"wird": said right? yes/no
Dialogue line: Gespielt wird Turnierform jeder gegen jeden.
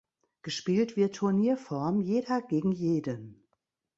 yes